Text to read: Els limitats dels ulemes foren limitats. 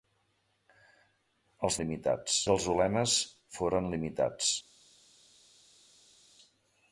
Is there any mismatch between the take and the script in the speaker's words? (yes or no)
no